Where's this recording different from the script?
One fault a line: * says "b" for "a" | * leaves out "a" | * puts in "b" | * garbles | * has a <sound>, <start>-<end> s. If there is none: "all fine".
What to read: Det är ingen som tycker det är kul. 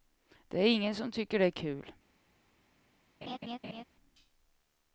* has a laugh, 3.2-3.8 s